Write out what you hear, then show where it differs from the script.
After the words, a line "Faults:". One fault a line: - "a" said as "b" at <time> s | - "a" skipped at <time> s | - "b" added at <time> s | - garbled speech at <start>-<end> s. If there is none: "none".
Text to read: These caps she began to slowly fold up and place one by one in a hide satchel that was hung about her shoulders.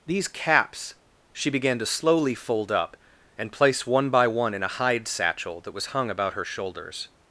These caps she began to slowly fold up and place one by one in a hide satchel that was hung about her shoulders.
Faults:
none